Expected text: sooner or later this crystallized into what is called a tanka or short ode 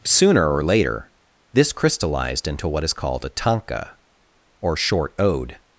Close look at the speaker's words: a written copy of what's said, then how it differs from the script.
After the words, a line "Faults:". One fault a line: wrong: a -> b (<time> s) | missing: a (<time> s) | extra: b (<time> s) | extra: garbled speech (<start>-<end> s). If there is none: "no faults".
sooner or later this crystallized into what is called a tanka or short ode
Faults:
no faults